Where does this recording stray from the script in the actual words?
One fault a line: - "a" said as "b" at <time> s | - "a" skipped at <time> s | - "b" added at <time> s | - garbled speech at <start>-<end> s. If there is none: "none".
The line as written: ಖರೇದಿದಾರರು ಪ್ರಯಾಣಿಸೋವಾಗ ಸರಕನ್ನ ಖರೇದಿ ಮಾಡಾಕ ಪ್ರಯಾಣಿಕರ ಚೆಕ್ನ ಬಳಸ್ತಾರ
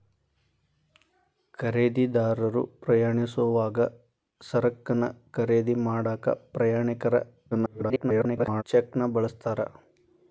- garbled speech at 7.5-8.6 s